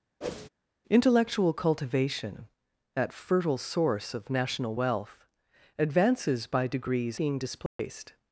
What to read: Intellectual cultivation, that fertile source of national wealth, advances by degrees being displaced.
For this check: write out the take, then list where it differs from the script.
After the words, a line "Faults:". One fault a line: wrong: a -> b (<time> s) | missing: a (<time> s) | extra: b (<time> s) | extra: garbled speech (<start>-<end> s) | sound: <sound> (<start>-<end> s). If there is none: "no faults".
Intellectual cultivation, that fertile source of national wealth, advances by degrees being displaced.
Faults:
sound: whoosh (0.2-0.5 s)
sound: dropout (7.7-7.8 s)